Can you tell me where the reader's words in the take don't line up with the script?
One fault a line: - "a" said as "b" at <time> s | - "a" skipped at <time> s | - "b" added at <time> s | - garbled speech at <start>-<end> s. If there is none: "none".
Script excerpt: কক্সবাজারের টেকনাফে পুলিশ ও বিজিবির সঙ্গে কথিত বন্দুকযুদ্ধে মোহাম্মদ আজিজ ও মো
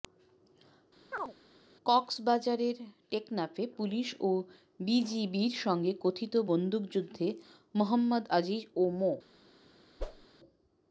none